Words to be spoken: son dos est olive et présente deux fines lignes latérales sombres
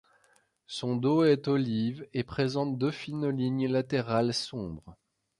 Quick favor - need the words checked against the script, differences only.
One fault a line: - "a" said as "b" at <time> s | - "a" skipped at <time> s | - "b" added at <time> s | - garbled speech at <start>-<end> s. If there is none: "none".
none